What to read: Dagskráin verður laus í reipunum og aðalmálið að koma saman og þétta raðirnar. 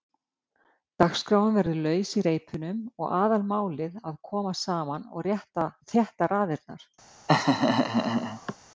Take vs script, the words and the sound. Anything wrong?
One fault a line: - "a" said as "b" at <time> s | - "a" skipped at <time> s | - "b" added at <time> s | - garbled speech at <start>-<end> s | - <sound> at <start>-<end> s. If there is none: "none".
- laugh at 7.3-8.5 s